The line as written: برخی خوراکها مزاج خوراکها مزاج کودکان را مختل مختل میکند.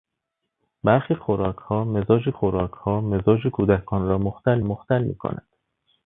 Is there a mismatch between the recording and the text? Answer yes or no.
no